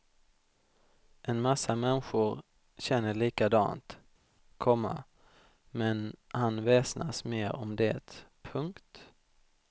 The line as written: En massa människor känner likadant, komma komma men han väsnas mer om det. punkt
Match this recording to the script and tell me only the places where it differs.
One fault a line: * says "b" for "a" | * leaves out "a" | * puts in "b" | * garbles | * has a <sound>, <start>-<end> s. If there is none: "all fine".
* leaves out "komma"